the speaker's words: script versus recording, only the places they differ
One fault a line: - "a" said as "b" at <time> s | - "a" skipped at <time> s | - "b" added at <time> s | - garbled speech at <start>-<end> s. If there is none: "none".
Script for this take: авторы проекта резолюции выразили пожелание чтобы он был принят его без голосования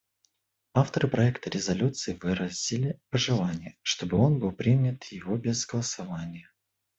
none